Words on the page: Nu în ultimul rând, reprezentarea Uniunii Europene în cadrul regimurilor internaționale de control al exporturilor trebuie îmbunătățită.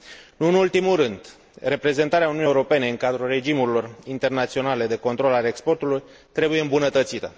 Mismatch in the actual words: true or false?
false